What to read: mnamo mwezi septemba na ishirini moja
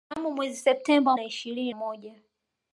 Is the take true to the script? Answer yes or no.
yes